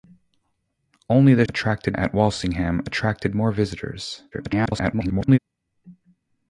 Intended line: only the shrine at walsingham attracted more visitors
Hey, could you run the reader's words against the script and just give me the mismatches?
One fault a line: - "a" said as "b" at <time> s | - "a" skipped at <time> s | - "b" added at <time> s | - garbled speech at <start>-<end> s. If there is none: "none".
- "shrine" said as "attracted" at 1.4 s
- garbled speech at 4.3-5.4 s